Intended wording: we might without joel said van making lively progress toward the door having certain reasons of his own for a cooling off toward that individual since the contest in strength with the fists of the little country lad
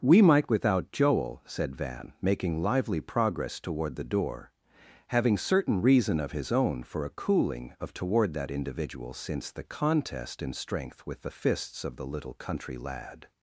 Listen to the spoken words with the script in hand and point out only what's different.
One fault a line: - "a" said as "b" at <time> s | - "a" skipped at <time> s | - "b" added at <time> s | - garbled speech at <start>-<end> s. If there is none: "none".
- "reasons" said as "reason" at 5.8 s
- "off" said as "of" at 7.8 s